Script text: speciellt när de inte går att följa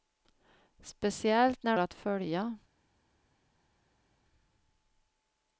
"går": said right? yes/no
no